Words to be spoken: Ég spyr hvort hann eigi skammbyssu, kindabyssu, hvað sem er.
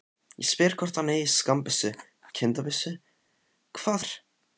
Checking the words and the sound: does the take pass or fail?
fail